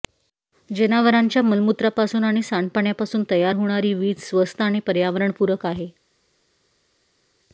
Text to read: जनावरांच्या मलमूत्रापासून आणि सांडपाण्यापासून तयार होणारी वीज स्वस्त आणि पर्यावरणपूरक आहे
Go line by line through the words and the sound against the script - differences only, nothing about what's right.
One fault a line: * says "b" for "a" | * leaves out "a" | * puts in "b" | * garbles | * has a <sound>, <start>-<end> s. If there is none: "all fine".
all fine